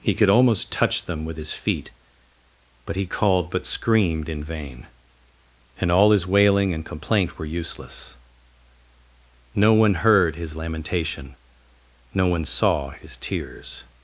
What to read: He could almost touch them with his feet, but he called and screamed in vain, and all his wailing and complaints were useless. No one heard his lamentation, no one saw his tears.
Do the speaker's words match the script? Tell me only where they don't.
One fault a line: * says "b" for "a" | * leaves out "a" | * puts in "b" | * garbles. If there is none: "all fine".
* says "but" for "and"
* says "complaint" for "complaints"